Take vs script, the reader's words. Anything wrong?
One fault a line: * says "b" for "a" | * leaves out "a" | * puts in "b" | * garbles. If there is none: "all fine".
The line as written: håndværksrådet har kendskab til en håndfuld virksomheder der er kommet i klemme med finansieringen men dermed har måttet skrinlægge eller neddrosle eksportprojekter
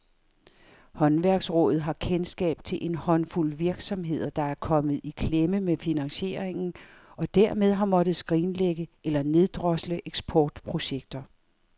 * says "og" for "men"